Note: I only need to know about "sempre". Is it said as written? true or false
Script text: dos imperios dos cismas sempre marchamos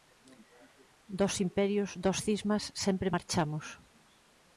true